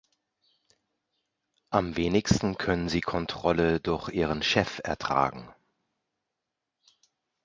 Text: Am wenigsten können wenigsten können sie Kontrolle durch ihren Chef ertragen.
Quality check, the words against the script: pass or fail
fail